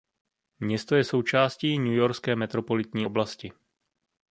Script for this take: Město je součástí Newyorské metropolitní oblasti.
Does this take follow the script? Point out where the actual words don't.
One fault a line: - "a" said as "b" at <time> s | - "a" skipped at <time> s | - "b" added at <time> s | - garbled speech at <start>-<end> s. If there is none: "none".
none